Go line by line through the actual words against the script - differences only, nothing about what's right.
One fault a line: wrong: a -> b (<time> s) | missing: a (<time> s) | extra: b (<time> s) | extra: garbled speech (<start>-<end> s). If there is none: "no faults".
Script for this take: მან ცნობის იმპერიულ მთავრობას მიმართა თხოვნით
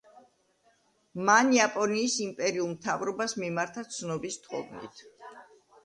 wrong: ცნობის -> იაპონიის (1.6 s)
extra: ცნობის (4.0 s)